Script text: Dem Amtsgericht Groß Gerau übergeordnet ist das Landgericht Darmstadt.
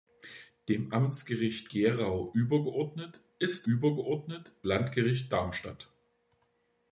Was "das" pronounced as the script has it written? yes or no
no